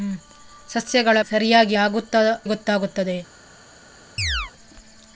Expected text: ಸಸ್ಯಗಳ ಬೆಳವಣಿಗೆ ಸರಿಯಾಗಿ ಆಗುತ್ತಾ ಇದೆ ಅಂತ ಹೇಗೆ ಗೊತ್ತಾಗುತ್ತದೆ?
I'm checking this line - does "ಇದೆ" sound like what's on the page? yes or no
no